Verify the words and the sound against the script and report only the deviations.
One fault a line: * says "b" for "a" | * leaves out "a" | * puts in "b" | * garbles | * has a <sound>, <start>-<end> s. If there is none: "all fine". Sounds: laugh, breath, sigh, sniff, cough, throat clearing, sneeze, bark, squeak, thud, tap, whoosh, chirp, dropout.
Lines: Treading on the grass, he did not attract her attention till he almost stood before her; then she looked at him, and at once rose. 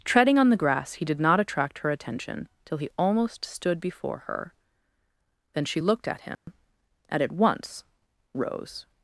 * has a dropout, 6.3-6.5 s